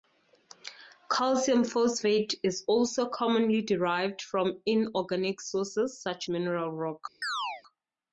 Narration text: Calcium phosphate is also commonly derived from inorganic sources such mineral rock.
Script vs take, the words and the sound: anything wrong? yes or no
yes